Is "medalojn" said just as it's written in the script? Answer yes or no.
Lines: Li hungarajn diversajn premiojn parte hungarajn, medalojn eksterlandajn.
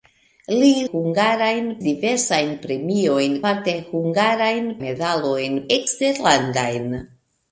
yes